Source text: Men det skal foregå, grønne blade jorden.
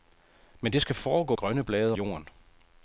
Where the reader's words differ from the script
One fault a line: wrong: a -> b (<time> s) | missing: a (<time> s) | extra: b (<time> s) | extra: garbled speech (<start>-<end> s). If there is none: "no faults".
no faults